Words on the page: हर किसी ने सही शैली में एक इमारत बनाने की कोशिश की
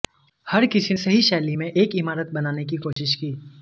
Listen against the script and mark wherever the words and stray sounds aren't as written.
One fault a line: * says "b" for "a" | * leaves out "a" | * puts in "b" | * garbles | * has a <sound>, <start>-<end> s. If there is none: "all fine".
* leaves out "ने"
* has a dropout, 2.9-3.0 s